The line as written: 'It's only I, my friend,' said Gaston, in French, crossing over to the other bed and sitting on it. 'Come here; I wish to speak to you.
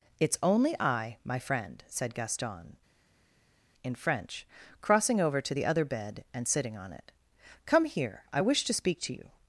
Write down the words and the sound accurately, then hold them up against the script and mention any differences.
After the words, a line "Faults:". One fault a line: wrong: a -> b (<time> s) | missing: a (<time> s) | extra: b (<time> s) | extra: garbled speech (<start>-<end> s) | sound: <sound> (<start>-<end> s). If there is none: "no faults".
'It's only I, my friend,' said Gaston, in French, crossing over to the other bed and sitting on it. 'Come here; I wish to speak to you.
Faults:
no faults